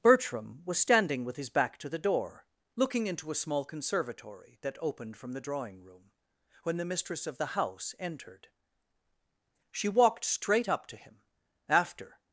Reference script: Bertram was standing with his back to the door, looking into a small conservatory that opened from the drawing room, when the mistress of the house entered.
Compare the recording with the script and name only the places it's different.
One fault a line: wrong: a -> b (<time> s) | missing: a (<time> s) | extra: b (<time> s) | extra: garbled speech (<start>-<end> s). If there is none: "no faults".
extra: She walked straight up to him after (9.7 s)